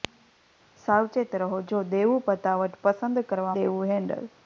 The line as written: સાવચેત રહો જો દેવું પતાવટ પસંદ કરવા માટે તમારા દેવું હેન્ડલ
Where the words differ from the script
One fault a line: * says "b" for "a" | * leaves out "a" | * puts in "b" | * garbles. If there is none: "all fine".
* leaves out "માટે તમારા"